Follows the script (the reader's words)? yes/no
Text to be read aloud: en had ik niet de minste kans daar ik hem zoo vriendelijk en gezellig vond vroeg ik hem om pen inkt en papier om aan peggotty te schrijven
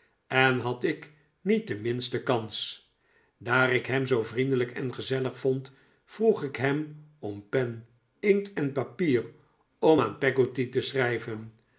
yes